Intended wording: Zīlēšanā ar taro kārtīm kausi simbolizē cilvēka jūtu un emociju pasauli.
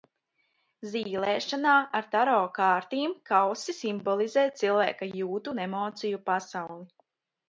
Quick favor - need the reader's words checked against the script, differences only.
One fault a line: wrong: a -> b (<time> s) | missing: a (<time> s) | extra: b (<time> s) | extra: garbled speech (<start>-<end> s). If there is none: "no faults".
no faults